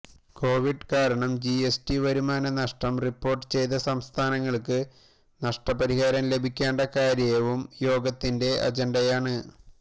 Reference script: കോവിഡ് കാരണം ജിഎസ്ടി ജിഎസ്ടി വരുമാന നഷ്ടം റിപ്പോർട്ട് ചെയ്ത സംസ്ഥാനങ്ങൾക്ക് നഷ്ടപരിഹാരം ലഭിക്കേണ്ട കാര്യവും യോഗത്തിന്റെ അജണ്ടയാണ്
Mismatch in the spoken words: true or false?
true